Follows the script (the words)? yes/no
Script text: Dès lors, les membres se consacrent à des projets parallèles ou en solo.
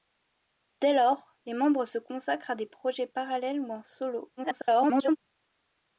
no